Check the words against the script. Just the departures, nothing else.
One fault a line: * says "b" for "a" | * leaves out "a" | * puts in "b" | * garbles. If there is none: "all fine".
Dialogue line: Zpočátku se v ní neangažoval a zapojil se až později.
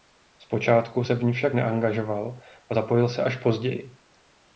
* puts in "však"